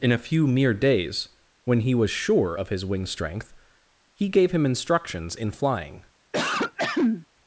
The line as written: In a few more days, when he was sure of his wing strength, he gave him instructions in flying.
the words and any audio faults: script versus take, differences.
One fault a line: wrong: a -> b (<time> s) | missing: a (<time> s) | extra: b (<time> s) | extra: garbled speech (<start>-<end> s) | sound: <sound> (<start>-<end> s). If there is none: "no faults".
wrong: more -> mere (0.5 s)
sound: throat clearing (6.3-7.3 s)